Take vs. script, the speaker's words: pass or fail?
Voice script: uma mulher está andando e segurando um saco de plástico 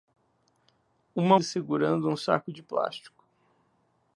fail